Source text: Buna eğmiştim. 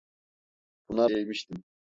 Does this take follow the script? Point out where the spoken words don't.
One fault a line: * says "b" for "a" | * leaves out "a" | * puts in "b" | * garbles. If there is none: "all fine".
all fine